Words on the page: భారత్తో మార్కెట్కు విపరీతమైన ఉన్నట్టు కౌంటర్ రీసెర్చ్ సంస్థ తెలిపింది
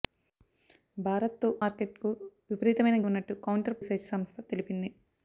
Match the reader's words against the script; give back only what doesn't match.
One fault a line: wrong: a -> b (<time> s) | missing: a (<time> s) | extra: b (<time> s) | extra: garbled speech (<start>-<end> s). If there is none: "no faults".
no faults